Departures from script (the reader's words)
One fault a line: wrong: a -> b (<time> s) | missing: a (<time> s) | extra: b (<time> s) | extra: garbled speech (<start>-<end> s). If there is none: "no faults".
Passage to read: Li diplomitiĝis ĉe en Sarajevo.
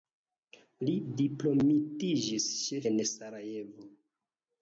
no faults